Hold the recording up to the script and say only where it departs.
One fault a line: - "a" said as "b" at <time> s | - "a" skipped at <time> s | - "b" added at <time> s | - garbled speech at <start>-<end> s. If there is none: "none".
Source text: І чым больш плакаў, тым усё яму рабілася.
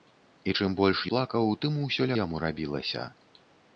none